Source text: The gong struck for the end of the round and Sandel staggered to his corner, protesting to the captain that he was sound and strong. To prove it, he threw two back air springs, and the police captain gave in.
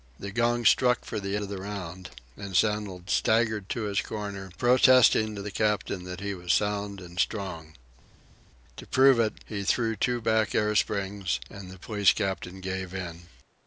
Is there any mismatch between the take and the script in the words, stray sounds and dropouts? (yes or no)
yes